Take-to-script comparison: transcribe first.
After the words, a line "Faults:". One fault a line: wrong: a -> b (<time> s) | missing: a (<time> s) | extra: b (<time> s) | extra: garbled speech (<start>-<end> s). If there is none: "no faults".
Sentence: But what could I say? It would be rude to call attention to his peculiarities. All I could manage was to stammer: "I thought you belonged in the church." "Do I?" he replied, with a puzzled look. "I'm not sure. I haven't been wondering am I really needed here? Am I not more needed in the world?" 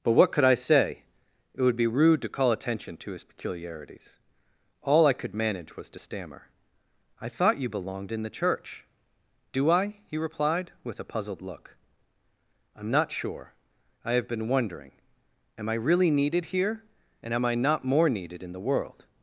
But what could I say? It would be rude to call attention to his peculiarities. All I could manage was to stammer: "I thought you belonged in the church." "Do I?" he replied, with a puzzled look. "I'm not sure. I have been wondering am I really needed here? And am I not more needed in the world?"
Faults:
wrong: haven't -> have (14.1 s)
extra: And (17.2 s)